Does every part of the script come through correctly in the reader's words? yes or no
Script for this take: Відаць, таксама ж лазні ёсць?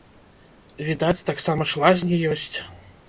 yes